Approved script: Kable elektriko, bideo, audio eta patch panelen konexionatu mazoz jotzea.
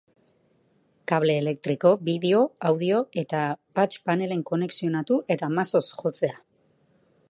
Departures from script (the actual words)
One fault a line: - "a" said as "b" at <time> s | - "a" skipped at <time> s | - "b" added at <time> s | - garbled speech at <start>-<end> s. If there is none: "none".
- "eta" added at 5.4 s